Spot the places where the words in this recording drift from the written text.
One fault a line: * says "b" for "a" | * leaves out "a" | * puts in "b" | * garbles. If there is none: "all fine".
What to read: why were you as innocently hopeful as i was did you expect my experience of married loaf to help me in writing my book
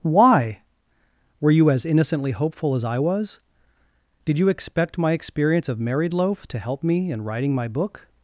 all fine